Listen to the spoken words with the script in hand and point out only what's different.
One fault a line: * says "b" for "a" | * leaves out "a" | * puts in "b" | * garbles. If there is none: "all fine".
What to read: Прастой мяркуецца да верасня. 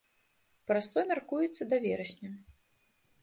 all fine